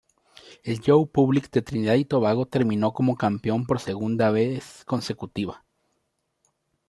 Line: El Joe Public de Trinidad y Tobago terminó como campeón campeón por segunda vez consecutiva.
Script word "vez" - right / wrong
right